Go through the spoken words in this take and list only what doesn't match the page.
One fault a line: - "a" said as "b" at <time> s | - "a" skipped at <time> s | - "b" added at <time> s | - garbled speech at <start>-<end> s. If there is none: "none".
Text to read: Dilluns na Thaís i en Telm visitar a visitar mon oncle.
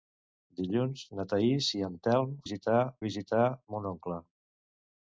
none